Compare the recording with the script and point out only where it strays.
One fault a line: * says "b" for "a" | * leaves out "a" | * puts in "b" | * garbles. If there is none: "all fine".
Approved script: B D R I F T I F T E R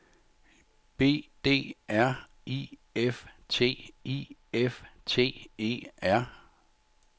all fine